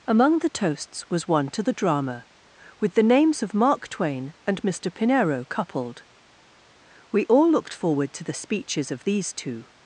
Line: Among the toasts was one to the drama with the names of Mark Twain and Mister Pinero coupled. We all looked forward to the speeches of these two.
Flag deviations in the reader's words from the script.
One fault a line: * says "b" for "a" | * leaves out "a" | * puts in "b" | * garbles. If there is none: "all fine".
all fine